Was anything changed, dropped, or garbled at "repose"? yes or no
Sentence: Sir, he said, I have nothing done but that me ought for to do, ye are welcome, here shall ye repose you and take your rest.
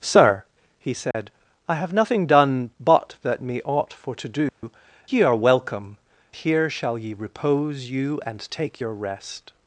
no